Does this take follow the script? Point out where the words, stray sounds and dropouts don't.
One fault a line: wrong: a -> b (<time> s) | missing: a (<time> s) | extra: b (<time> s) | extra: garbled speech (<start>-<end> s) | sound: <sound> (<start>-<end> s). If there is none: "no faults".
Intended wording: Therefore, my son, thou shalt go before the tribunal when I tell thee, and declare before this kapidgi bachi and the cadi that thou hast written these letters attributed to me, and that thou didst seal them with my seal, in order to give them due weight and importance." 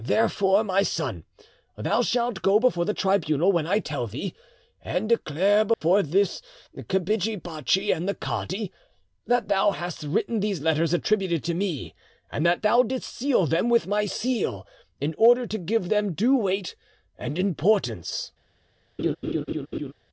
sound: dropout (5.7-5.8 s)
sound: laugh (19.0-19.9 s)